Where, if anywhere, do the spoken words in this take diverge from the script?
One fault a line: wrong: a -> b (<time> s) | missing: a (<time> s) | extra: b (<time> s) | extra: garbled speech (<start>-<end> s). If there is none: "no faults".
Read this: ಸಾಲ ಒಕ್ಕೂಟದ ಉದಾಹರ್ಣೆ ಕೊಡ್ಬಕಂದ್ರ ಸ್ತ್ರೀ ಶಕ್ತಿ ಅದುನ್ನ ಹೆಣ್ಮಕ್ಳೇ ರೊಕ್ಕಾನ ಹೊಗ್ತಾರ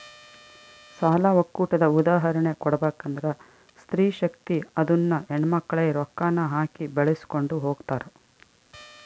extra: ಹಾಕಿ ಬೆಳಿಸ್ಕೊಂಡು (6.6 s)